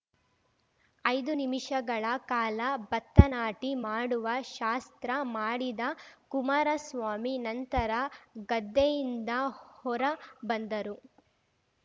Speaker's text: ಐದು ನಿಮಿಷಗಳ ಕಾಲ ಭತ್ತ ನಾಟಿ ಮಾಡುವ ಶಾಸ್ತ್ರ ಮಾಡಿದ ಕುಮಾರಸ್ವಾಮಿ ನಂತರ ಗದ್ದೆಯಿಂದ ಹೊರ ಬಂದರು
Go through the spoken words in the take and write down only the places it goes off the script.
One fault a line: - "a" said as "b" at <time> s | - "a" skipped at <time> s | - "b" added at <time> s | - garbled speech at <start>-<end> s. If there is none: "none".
none